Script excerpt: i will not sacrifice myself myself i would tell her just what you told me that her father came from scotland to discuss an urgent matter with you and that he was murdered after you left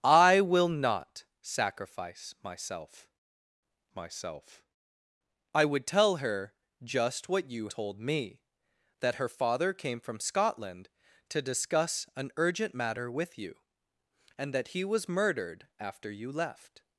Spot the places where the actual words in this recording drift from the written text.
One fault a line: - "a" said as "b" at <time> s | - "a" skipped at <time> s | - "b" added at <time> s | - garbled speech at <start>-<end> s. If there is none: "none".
none